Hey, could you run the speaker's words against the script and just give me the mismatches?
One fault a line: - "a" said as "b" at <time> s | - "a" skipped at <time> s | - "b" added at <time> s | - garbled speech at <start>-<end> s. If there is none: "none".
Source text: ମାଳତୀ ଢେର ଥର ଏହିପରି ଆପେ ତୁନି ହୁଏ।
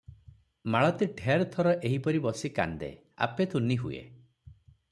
- "ବସି କାନ୍ଦେ" added at 2.2 s